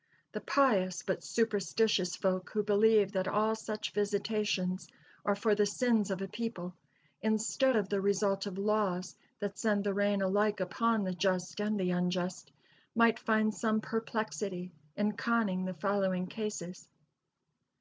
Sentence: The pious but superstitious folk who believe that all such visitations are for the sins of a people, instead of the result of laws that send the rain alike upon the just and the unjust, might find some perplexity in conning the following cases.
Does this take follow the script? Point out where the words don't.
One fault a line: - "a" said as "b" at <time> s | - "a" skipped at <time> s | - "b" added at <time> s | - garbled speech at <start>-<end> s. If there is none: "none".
none